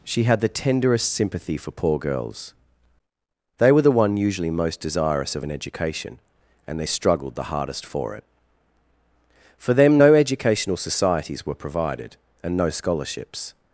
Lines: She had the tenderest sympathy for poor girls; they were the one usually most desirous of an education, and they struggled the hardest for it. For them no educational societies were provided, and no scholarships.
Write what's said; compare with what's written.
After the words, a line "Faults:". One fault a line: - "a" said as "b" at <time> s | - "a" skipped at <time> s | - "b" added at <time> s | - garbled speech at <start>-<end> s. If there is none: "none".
She had the tenderest sympathy for poor girls; they were the one usually most desirous of an education, and they struggled the hardest for it. For them no educational societies were provided, and no scholarships.
Faults:
none